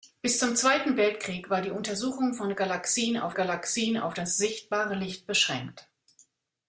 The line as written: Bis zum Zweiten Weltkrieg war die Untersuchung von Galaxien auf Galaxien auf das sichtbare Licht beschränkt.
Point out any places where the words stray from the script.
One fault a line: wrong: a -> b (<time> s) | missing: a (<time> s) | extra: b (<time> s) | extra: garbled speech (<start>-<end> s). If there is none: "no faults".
no faults